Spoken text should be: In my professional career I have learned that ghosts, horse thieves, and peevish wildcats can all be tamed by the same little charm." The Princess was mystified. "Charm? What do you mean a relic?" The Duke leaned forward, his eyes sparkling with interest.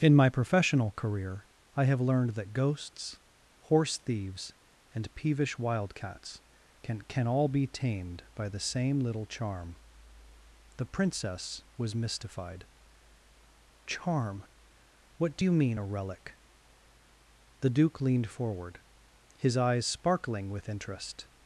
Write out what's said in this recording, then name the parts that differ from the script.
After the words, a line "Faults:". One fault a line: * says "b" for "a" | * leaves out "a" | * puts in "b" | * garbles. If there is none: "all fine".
In my professional career I have learned that ghosts, horse thieves, and peevish wildcats can can all be tamed by the same little charm." The Princess was mystified. "Charm? What do you mean a relic?" The Duke leaned forward, his eyes sparkling with interest.
Faults:
* puts in "can"